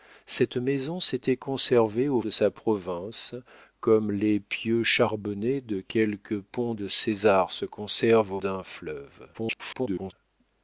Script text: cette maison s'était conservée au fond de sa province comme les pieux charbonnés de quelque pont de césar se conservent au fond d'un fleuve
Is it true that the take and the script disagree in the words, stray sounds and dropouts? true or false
true